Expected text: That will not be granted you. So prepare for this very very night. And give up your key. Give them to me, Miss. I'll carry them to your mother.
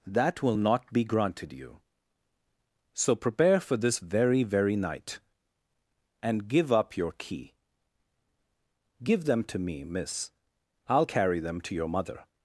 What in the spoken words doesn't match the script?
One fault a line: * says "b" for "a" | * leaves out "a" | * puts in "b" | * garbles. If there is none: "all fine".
all fine